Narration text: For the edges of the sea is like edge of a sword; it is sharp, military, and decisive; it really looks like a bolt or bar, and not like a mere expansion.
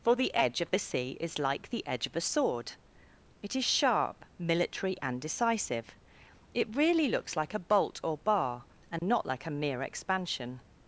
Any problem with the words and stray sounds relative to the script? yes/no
yes